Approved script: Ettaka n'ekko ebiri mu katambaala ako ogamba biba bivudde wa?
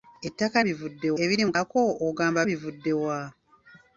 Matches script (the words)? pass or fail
fail